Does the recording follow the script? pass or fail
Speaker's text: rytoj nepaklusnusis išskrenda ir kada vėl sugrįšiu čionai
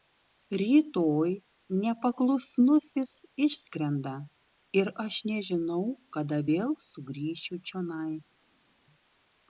fail